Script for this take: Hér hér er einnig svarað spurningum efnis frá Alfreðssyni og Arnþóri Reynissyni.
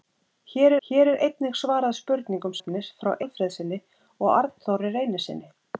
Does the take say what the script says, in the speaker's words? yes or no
yes